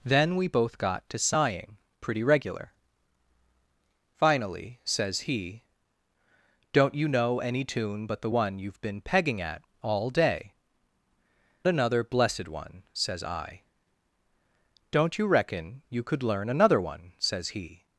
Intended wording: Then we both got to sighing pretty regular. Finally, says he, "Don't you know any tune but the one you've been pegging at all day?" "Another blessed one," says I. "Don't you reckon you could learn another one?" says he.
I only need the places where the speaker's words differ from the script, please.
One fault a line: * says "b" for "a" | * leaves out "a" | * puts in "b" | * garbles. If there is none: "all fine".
all fine